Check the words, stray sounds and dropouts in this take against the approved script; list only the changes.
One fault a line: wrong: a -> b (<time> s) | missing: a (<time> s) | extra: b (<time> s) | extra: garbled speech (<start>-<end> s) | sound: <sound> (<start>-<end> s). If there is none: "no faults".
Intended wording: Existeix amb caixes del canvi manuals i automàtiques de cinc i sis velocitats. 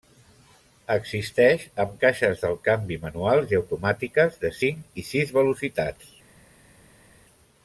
no faults